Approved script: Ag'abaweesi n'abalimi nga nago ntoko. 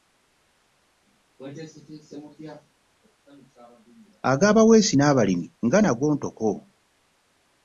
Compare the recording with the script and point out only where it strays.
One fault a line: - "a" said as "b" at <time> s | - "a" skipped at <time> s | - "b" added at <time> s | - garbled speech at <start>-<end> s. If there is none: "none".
none